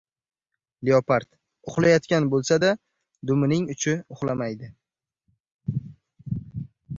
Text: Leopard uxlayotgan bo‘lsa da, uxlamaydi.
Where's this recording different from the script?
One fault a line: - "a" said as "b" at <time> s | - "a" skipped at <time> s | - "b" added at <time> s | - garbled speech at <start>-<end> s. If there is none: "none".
- "dumining uchi" added at 3.3 s